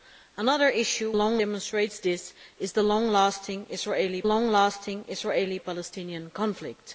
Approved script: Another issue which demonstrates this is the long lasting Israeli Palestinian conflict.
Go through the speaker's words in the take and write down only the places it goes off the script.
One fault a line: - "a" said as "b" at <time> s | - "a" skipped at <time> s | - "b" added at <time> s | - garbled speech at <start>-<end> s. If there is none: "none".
- "which" said as "long" at 1.1 s
- "long lasting Israeli" added at 4.2 s